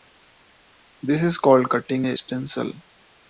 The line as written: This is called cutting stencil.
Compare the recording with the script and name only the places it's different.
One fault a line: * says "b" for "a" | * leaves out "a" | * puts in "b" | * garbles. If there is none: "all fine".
* puts in "a"